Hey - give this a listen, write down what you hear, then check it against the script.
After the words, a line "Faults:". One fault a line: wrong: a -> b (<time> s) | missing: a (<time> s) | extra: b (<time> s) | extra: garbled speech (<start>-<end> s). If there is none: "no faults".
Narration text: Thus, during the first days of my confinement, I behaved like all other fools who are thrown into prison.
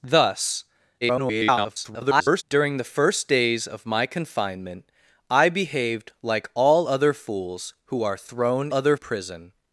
Thus, [garbled] during the first days of my confinement, I behaved like all other fools who are thrown other prison.
Faults:
extra: garbled speech (1.0-2.4 s)
wrong: into -> other (8.7 s)